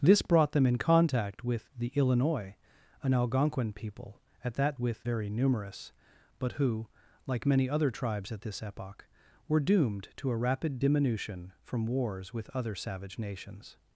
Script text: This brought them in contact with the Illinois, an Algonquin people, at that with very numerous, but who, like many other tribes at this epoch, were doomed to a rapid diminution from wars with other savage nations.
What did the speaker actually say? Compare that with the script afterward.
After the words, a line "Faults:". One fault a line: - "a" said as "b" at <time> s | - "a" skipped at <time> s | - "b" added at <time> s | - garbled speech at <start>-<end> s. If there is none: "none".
This brought them in contact with the Illinois, an Algonquin people, at that with very numerous, but who, like many other tribes at this epoch, were doomed to a rapid diminution from wars with other savage nations.
Faults:
none